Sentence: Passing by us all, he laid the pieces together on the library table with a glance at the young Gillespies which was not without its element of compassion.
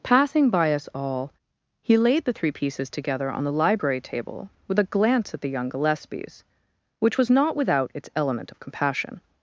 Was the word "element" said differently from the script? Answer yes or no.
no